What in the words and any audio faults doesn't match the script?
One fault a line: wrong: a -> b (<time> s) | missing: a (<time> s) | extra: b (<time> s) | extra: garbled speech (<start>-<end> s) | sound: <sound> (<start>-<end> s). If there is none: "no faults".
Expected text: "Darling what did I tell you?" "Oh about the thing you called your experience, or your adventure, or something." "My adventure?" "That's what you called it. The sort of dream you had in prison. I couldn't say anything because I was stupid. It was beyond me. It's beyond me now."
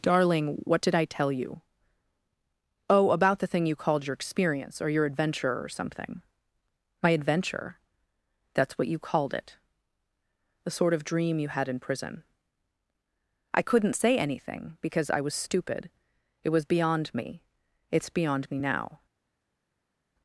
no faults